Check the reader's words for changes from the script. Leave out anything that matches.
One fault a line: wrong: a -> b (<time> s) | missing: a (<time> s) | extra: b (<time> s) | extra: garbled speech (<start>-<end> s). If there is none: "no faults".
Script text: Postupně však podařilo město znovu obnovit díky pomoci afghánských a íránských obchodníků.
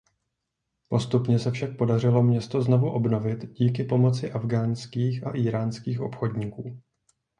extra: se (1.4 s)